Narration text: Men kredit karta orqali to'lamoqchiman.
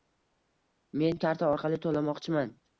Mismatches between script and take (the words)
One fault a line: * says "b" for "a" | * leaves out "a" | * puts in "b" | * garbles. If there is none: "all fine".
* leaves out "kredit"